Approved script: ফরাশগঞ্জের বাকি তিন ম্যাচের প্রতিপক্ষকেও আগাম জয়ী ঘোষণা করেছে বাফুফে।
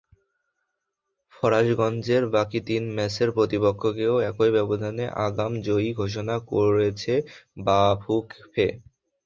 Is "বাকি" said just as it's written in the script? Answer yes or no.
yes